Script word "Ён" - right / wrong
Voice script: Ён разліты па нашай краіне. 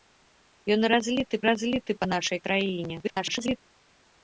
right